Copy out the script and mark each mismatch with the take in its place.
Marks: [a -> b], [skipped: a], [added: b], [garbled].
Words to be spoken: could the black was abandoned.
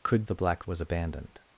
could the black was abandoned.